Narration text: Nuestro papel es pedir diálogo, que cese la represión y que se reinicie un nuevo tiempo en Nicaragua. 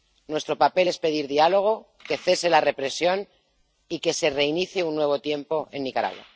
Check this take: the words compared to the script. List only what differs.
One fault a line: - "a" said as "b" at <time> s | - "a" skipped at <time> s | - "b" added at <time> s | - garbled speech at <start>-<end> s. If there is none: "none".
none